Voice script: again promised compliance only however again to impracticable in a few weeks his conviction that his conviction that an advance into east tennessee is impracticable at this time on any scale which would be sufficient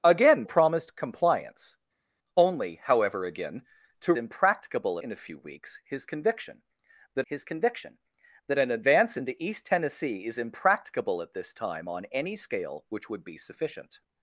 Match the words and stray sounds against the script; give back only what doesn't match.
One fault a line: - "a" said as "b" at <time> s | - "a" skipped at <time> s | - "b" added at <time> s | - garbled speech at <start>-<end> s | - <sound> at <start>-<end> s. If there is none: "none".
none